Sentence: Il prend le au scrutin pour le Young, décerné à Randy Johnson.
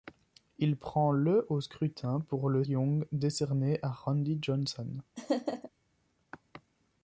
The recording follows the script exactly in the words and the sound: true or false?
false